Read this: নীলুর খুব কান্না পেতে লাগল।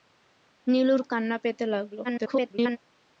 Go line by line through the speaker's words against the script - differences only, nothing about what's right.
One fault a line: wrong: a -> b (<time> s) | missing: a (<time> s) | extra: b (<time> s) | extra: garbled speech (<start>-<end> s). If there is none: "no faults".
missing: খুব (1.0 s)
extra: garbled speech (2.0-2.8 s)